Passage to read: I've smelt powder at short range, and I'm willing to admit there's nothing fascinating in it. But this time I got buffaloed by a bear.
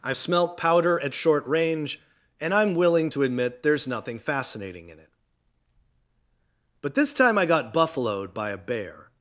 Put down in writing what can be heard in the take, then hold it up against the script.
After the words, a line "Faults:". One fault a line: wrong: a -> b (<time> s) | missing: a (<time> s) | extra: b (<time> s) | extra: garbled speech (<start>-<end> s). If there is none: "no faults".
I've smelt powder at short range, and I'm willing to admit there's nothing fascinating in it. But this time I got buffaloed by a bear.
Faults:
no faults